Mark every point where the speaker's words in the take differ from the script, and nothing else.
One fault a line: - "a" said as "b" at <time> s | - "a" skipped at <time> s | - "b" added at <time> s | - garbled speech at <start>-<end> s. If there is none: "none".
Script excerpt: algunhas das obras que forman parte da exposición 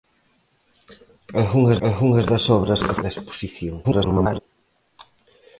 - "algunhas" added at 1.9 s
- "forman parte" skipped at 3.0 s
- garbled speech at 3.8-4.4 s